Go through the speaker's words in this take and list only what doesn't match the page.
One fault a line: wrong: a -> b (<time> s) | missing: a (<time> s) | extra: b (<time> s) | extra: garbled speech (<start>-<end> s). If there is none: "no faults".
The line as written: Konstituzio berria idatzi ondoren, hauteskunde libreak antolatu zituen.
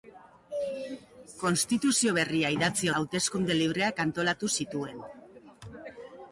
missing: ondoren (2.9 s)